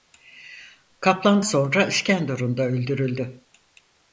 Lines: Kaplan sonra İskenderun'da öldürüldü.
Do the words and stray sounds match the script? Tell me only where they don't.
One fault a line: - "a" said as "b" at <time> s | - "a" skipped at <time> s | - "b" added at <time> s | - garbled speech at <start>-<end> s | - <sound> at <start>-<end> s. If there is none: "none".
none